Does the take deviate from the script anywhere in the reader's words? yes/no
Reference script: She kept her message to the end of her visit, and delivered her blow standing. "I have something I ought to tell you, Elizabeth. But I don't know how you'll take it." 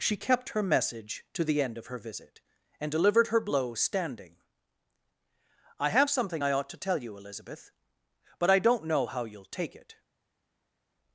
no